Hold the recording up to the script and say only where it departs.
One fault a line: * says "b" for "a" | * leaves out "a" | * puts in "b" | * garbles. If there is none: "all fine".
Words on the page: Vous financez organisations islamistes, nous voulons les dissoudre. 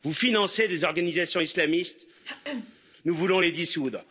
* puts in "des"